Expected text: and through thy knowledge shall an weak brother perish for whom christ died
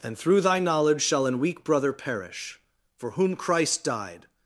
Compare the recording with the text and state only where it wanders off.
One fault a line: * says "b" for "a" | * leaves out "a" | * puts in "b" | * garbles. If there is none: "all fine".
all fine